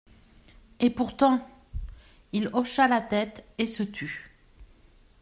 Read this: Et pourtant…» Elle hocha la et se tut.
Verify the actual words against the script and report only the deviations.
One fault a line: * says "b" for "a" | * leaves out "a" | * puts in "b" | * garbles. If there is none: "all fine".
* says "Il" for "Elle"
* puts in "tête"